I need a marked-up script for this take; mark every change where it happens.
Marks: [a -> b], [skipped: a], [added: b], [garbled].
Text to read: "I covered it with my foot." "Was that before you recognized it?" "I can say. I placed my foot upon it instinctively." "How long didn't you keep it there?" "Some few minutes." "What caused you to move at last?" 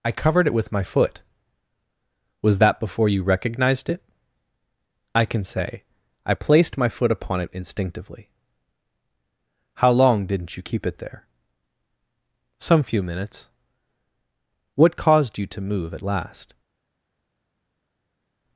"I covered it with my foot." "Was that before you recognized it?" "I can say. I placed my foot upon it instinctively." "How long didn't you keep it there?" "Some few minutes." "What caused you to move at last?"